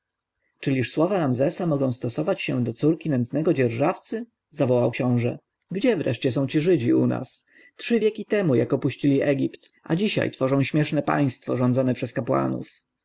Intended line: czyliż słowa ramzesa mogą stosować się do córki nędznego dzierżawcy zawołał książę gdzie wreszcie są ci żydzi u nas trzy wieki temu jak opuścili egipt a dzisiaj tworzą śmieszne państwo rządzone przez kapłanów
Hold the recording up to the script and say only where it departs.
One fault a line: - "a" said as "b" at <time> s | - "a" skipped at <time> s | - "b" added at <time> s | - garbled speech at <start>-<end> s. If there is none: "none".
none